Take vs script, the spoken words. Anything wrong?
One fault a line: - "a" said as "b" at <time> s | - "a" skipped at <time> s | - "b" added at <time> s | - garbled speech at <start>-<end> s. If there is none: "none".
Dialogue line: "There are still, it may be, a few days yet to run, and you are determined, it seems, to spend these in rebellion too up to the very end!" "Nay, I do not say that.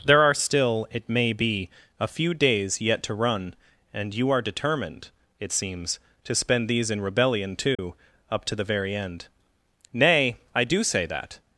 - "not" skipped at 10.8 s